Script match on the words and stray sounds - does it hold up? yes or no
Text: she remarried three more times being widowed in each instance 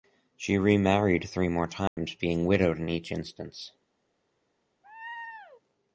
no